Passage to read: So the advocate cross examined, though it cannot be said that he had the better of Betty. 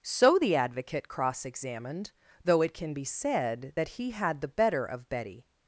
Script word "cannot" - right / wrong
wrong